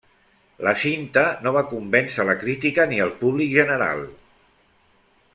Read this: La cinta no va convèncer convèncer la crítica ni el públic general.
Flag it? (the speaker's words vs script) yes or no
yes